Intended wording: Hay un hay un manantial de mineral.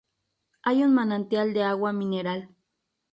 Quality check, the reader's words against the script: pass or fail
fail